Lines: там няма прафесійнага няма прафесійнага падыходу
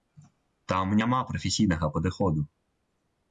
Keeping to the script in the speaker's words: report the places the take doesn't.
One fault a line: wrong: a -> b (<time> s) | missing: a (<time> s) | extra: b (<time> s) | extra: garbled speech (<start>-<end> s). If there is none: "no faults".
missing: няма прафесійнага (1.9 s)